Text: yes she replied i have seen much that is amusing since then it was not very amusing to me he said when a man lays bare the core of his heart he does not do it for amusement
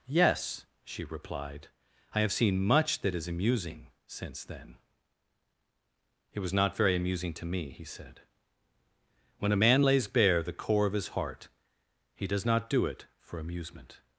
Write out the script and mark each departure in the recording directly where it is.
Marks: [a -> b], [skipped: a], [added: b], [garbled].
yes she replied i have seen much that is amusing since then it was not very amusing to me he said when a man lays bare the core of his heart he does not do it for amusement